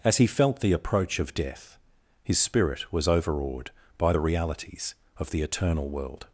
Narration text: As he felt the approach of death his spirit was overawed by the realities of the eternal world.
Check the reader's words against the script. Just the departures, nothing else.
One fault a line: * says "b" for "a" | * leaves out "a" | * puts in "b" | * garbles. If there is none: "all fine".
all fine